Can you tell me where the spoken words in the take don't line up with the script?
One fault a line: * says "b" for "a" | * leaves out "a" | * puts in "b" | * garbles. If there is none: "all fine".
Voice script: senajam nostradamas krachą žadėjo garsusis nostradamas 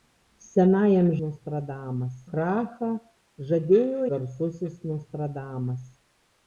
all fine